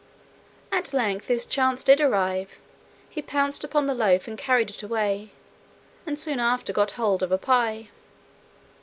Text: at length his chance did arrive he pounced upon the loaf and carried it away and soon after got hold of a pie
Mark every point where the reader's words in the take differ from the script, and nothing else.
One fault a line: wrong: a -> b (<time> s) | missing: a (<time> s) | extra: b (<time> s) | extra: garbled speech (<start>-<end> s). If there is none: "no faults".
no faults